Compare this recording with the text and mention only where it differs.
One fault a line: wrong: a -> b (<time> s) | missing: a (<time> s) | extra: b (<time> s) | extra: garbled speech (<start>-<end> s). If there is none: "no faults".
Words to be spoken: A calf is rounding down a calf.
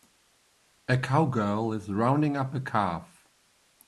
wrong: calf -> cowgirl (1.0 s)
wrong: down -> up (2.4 s)